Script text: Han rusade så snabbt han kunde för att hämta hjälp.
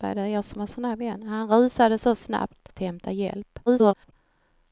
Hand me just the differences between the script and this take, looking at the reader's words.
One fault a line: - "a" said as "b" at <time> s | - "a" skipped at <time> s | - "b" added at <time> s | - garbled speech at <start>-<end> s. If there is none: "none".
- "han kunde för" skipped at 2.7 s
- garbled speech at 3.7-4.1 s